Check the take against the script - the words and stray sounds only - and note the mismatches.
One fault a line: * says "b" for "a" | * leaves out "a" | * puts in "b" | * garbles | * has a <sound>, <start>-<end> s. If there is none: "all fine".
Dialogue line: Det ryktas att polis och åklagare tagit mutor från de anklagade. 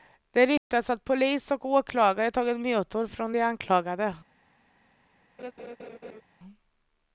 * has a dropout, 0.6-0.7 s
* has a laugh, 5.4-6.2 s